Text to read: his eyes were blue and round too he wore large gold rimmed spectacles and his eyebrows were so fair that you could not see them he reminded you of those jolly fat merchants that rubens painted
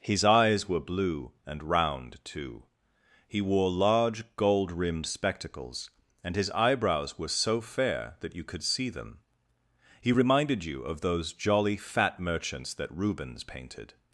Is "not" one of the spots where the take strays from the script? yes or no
yes